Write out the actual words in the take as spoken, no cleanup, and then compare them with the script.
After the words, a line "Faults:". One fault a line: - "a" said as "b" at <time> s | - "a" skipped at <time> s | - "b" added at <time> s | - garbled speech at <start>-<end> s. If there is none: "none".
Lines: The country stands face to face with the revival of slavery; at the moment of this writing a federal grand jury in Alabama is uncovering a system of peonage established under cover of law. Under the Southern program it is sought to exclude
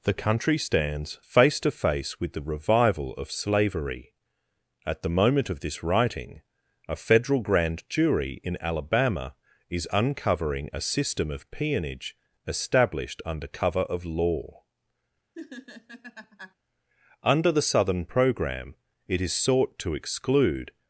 The country stands face to face with the revival of slavery; at the moment of this writing a federal grand jury in Alabama is uncovering a system of peonage established under cover of law. Under the Southern program it is sought to exclude
Faults:
none